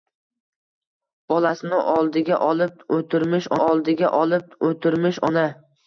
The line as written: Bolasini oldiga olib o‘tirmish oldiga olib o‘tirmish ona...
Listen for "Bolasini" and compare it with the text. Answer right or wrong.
right